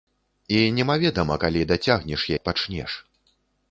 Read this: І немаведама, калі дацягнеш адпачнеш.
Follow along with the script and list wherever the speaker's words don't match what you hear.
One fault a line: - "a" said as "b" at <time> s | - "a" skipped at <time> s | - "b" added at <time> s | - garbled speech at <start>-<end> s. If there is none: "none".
none